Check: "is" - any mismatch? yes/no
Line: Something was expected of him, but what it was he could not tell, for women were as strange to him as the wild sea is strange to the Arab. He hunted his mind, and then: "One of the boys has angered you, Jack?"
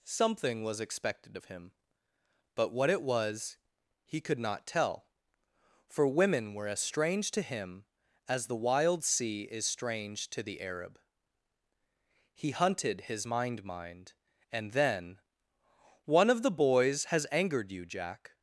no